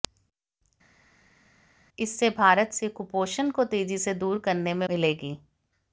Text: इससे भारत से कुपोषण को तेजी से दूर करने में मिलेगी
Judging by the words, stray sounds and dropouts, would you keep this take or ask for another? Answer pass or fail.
pass